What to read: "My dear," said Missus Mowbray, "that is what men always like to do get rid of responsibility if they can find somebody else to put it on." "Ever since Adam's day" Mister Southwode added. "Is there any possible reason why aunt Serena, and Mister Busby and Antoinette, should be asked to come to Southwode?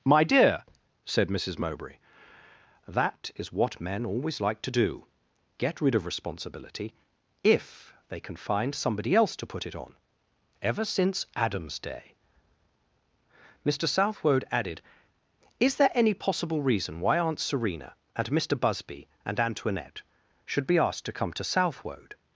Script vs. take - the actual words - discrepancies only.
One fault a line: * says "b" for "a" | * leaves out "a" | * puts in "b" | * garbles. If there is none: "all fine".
all fine